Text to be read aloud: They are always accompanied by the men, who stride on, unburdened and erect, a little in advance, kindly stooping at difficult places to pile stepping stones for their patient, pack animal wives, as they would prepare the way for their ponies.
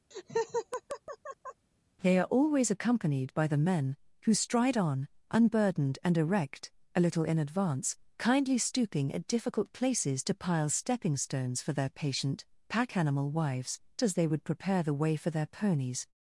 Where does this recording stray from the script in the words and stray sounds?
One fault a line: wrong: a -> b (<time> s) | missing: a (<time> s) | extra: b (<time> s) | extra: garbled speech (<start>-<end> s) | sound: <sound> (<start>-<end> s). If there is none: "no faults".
sound: laugh (0.1-1.7 s)